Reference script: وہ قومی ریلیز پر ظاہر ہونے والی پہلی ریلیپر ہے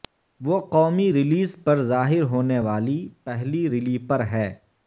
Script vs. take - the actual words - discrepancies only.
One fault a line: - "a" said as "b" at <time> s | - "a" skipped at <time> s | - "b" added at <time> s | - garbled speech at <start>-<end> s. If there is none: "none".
none